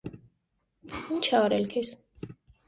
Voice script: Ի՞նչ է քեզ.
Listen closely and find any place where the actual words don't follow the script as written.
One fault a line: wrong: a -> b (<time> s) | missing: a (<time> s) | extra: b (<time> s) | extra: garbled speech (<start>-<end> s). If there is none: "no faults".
extra: արել (1.4 s)